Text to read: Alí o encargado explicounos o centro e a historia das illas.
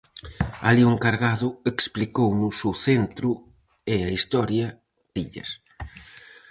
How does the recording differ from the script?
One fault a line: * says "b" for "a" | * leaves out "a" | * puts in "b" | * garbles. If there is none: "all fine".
* leaves out "das"